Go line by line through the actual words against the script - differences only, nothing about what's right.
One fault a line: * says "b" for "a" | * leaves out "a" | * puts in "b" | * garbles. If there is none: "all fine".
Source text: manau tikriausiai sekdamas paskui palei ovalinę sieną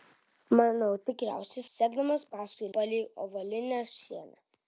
all fine